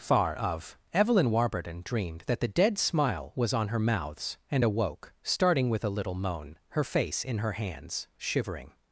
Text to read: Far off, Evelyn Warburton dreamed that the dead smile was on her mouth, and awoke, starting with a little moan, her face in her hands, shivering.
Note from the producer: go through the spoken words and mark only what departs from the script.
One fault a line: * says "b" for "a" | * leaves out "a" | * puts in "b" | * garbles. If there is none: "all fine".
* says "of" for "off"
* says "mouths" for "mouth"